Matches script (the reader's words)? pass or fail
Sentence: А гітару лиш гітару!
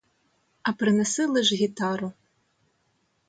fail